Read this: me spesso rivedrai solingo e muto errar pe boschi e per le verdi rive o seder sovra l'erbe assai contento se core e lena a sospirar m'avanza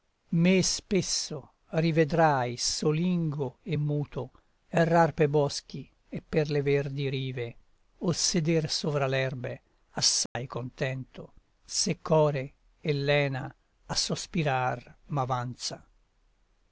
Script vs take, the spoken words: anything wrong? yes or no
no